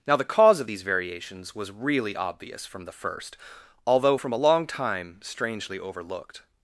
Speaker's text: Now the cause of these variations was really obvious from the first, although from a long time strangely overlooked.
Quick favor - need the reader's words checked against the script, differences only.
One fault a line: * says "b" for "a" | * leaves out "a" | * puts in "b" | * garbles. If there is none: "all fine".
all fine